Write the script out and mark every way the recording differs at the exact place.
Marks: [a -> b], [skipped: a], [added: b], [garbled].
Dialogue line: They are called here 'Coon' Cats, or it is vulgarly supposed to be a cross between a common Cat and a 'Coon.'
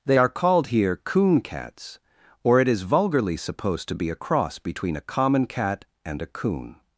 They are called here 'Coon' Cats, or it is vulgarly supposed to be a cross between a common Cat and a 'Coon.'